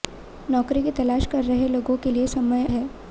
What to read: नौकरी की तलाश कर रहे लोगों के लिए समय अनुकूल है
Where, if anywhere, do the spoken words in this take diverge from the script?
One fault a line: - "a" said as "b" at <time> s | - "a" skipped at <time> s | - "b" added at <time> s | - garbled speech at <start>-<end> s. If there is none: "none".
- "अनुकूल" skipped at 2.7 s